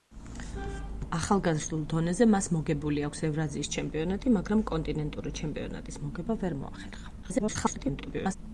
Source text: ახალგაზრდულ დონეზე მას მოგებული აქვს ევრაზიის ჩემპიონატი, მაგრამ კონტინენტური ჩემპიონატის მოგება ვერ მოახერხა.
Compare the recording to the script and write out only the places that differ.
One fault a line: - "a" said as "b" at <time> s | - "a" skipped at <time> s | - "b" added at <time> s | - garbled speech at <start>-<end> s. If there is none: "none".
- garbled speech at 7.2-8.4 s